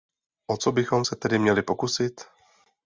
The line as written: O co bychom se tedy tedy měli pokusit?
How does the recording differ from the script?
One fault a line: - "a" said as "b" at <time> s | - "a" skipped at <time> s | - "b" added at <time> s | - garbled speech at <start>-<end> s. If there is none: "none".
- "tedy" skipped at 1.4 s